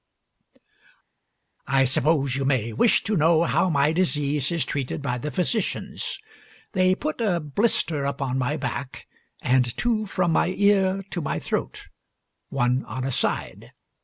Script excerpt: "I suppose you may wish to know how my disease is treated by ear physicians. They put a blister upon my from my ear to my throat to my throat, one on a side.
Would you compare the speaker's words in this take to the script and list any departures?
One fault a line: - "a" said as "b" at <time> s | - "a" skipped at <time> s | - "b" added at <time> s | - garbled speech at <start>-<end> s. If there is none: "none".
- "ear" said as "the" at 5.2 s
- "from my ear to" said as "back and two from" at 8.6 s
- "throat" said as "ear" at 10.6 s